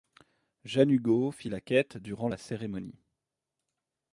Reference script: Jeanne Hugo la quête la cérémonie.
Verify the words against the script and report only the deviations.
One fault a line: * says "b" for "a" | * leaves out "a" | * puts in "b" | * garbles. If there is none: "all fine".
* puts in "fit"
* puts in "durant"